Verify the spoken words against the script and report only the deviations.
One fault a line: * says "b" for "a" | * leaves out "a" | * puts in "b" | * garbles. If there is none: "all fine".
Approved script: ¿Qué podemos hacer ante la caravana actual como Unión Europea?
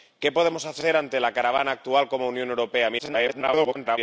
* garbles